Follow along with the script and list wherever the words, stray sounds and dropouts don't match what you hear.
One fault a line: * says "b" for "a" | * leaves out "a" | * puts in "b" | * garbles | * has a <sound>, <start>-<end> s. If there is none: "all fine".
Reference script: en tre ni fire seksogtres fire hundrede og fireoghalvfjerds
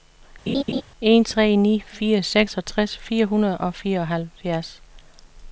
* has a laugh, 0.5-0.8 s